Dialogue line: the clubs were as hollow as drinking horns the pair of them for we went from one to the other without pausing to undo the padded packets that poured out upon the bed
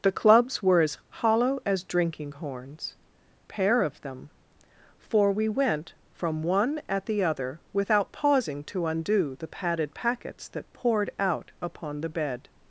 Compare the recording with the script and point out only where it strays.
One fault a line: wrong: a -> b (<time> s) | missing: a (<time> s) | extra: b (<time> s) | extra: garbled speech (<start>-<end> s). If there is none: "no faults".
missing: the (3.0 s)
wrong: to -> at (6.9 s)